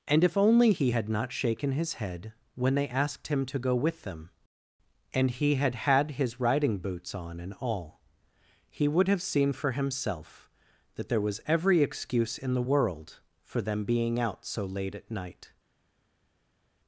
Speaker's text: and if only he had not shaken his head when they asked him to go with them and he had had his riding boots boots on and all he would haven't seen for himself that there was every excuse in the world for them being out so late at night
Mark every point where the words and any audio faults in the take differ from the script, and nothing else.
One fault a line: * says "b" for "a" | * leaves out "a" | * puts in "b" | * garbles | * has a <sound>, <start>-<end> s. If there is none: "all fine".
* leaves out "boots"
* says "have" for "haven't"